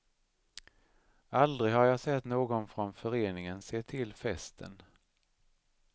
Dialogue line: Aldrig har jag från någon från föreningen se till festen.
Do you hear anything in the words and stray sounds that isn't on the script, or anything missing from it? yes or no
yes